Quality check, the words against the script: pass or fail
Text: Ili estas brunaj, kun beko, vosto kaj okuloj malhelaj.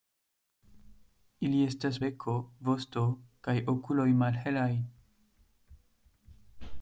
fail